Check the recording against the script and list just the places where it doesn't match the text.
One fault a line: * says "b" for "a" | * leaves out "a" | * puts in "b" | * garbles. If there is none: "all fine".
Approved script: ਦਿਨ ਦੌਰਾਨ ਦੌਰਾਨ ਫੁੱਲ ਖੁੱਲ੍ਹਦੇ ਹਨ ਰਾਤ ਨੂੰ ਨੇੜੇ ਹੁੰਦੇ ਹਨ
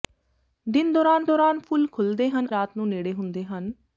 all fine